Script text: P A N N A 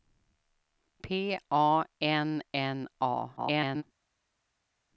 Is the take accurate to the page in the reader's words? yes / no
no